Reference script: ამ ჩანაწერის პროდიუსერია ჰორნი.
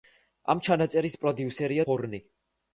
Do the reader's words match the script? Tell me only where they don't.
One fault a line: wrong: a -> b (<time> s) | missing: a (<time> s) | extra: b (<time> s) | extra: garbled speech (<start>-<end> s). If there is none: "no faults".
no faults